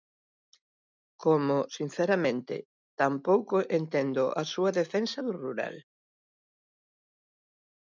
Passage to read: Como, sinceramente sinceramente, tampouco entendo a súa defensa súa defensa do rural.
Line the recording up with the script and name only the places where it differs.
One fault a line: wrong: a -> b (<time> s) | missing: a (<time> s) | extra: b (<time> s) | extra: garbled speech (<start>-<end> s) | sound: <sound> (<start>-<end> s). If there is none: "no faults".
missing: sinceramente (2.5 s)
missing: súa defensa (5.2 s)